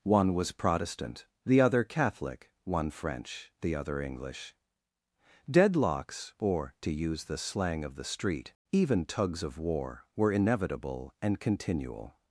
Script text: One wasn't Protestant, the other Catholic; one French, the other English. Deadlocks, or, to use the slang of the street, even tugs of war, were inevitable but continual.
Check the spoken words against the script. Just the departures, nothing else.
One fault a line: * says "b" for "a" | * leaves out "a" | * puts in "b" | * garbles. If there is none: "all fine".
* says "was" for "wasn't"
* says "and" for "but"